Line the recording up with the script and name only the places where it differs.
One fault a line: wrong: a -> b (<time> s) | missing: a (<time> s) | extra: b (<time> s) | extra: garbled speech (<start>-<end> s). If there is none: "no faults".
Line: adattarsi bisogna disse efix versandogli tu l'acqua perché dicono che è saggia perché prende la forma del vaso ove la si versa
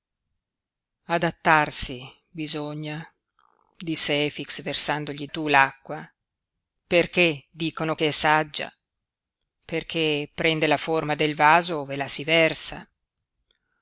no faults